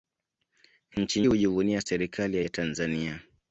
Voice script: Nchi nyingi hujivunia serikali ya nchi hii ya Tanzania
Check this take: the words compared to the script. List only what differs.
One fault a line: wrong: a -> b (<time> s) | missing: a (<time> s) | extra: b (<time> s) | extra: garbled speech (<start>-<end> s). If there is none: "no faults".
missing: nyingi (1.2 s)
missing: nchi hii (2.4 s)